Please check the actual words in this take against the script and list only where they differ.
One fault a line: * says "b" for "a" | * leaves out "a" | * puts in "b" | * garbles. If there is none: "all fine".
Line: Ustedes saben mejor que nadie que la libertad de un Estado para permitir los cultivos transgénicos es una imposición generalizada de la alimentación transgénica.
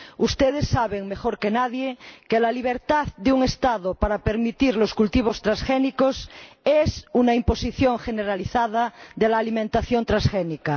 all fine